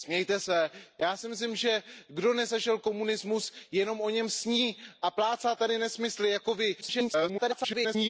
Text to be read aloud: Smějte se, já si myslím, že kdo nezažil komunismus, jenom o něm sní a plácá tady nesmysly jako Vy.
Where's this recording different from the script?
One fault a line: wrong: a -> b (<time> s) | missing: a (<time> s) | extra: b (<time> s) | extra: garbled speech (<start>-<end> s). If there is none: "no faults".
extra: garbled speech (6.8-8.1 s)